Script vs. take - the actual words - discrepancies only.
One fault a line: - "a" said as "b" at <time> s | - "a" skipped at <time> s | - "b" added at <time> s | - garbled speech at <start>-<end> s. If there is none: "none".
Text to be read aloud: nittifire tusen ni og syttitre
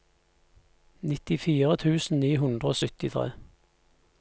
- "hundre" added at 2.5 s